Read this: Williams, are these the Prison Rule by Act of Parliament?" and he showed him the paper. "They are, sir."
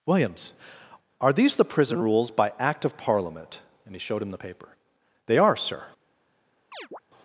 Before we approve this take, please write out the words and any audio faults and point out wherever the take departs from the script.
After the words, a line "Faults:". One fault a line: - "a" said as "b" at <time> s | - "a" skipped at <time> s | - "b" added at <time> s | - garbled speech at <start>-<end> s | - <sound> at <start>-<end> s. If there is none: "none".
Williams, are these the Prison Rules by Act of Parliament?" and he showed him the paper. "They are, sir."
Faults:
- "Rule" said as "Rules" at 2.0 s
- chirp at 6.7-7.0 s